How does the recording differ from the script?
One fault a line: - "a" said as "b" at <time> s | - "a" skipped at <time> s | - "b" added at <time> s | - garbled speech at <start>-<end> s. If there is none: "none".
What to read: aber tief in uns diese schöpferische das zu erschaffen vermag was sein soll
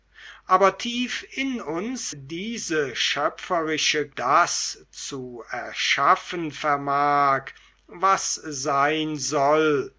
none